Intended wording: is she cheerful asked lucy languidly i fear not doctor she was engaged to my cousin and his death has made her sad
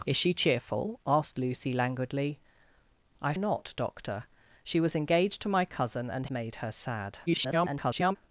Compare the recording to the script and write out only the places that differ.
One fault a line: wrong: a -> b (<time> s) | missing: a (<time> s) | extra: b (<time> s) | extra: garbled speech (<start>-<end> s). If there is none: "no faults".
missing: fear (3.3 s)
missing: his death has (6.3 s)
extra: garbled speech (7.3-8.2 s)